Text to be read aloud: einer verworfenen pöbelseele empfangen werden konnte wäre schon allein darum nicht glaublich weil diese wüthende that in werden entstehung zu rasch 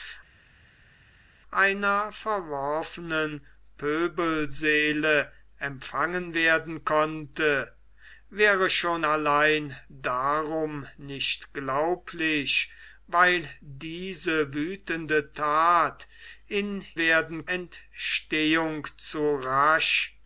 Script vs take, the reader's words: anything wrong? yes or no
no